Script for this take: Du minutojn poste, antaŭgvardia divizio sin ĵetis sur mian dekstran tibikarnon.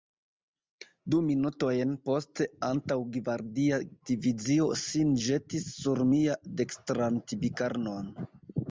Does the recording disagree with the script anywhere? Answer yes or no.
no